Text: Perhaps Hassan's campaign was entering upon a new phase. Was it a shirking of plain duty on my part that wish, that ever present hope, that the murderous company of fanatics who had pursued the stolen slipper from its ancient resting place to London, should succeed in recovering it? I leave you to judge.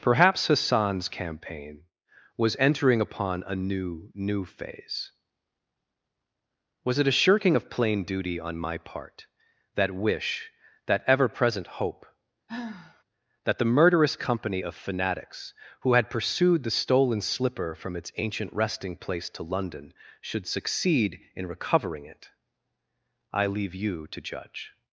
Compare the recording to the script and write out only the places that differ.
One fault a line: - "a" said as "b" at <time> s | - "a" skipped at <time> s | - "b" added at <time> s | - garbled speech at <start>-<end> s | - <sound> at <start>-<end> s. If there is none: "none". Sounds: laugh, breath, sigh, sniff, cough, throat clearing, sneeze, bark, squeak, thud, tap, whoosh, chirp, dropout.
- "new" added at 4.2 s
- sigh at 12.5-13.0 s